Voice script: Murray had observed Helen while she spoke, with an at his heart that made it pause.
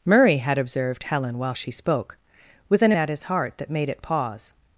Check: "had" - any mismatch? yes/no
no